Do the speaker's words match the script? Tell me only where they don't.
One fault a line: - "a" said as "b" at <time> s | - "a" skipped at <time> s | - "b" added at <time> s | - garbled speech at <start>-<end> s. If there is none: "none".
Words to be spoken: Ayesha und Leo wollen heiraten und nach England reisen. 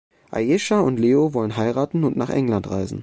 none